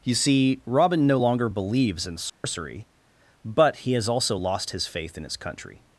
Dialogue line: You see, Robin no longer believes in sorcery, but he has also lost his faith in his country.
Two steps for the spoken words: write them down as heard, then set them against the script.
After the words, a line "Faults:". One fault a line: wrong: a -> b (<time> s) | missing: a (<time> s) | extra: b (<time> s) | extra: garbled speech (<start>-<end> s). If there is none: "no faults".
You see, Robin no longer believes in sorcery, but he has also lost his faith in his country.
Faults:
no faults